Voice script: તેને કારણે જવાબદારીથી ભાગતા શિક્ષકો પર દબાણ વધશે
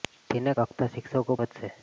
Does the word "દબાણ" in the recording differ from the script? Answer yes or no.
yes